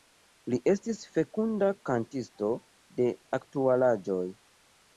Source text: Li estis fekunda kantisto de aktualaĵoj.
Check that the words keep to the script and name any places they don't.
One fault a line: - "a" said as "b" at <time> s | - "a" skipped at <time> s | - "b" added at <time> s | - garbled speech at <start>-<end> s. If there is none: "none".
none